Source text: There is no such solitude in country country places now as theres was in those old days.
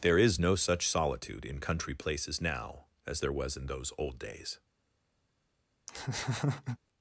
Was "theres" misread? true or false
true